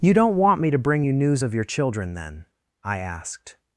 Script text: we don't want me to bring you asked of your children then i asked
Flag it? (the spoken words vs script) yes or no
yes